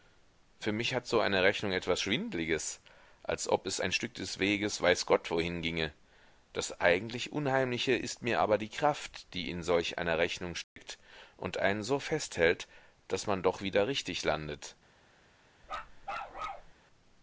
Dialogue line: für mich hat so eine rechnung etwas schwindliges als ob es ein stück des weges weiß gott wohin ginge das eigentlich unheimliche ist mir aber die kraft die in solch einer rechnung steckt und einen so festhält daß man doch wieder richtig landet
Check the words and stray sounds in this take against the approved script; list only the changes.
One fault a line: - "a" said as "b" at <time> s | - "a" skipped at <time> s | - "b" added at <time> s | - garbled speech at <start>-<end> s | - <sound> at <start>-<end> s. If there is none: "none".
- dropout at 10.6-10.8 s
- bark at 15.6-16.7 s